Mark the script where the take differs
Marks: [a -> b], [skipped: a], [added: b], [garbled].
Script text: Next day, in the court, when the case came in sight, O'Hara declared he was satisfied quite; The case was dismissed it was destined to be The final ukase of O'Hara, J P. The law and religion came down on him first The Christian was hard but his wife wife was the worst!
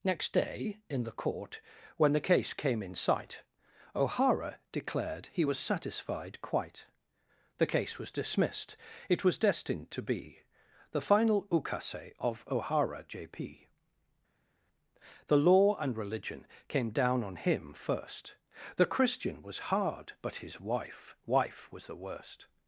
Next day, in the court, when the case came in sight, O'Hara declared he was satisfied quite; The case was dismissed it was destined to be The final ukase of O'Hara, J P. The law and religion came down on him first The Christian was hard but his wife wife was the worst!